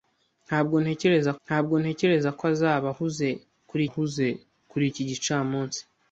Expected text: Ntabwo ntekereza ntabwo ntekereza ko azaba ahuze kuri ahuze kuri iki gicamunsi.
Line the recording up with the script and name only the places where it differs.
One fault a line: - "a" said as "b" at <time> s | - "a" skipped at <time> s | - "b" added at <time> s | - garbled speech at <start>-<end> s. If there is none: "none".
none